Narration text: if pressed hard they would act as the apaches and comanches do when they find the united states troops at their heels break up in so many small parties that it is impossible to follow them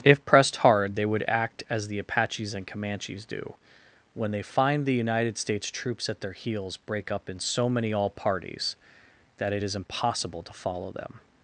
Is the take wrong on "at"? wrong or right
right